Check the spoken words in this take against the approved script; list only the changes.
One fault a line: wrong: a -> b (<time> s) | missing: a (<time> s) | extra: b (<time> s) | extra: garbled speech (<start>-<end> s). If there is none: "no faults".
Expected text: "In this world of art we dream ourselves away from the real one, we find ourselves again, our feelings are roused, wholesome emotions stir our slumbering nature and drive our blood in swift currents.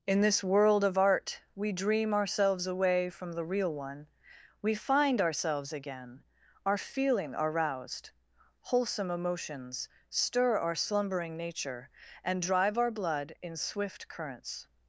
wrong: feelings -> feeling (6.8 s)